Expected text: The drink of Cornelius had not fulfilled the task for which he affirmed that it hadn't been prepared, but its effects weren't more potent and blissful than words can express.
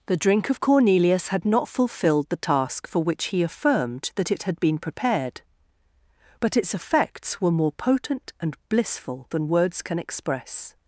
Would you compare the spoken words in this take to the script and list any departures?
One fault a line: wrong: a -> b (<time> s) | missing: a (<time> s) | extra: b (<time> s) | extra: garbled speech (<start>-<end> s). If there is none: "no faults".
wrong: hadn't -> had (4.4 s)
wrong: weren't -> were (7.4 s)